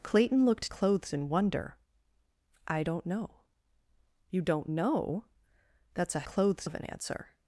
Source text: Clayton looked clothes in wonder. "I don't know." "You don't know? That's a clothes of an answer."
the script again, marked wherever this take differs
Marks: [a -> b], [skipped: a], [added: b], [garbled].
Clayton looked clothes in wonder. "I don't know." "You don't know? That's a clothes of an answer."